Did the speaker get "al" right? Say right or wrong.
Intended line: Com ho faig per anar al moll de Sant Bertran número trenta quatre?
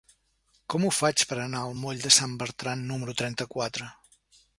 right